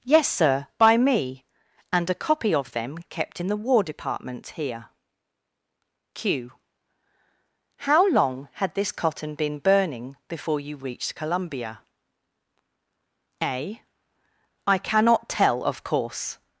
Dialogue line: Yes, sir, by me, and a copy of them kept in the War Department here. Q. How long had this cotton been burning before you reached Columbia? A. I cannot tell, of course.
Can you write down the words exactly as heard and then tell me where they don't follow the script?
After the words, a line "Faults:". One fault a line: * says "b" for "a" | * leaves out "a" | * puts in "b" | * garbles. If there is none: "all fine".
Yes, sir, by me, and a copy of them kept in the War Department here. Q. How long had this cotton been burning before you reached Columbia? A. I cannot tell, of course.
Faults:
all fine